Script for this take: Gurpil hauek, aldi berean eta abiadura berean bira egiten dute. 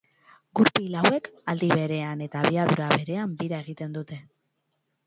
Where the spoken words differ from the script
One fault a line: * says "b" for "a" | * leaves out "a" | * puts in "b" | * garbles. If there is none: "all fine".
all fine